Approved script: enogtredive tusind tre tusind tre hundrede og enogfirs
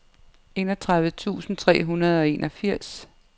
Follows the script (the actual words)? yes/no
no